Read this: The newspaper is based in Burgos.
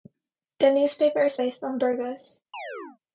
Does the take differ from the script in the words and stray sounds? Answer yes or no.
yes